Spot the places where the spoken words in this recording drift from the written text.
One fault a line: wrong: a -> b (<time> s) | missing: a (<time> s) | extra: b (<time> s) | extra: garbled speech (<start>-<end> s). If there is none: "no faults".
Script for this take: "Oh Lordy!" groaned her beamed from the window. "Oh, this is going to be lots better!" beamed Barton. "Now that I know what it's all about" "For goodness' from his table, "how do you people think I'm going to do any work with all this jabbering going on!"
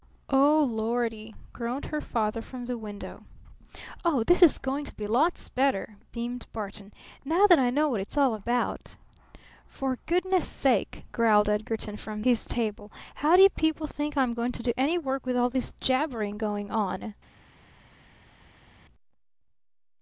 wrong: beamed -> father (2.0 s)
extra: sake growled Edgarton (10.5 s)